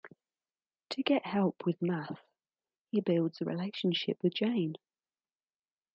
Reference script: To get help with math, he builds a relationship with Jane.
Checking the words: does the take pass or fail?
pass